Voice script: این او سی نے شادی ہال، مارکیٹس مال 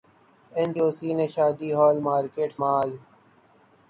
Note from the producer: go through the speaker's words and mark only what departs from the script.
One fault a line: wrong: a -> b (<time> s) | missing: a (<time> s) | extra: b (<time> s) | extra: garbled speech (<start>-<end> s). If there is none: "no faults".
no faults